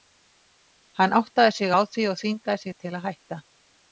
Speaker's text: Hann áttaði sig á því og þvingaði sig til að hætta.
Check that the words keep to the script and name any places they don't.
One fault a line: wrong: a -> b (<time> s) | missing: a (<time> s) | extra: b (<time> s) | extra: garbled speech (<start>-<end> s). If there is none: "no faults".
no faults